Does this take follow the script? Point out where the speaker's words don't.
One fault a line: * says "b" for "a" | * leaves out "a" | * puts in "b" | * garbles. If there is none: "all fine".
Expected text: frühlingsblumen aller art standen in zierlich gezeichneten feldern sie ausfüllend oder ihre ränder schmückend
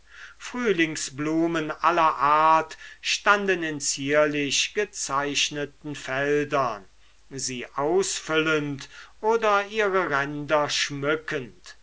all fine